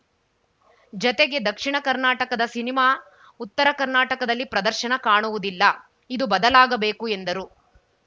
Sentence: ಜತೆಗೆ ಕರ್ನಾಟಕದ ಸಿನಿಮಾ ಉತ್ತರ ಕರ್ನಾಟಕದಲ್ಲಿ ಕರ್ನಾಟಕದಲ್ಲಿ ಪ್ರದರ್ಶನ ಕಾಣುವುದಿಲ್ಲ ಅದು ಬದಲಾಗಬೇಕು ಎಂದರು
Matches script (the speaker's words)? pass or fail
fail